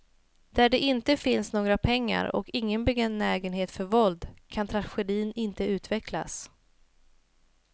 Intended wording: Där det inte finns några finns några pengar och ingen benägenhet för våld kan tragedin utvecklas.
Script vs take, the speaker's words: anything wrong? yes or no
yes